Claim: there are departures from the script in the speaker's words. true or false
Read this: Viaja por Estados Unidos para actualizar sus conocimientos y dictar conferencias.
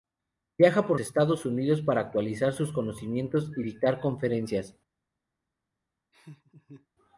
false